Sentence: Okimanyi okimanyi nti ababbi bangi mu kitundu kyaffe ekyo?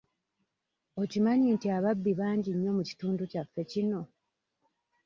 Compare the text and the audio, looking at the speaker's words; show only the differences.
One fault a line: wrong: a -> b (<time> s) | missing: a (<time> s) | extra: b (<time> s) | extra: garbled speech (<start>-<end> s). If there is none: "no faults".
missing: okimanyi (1.5 s)
extra: nnyo (2.5 s)
wrong: ekyo -> kino (3.7 s)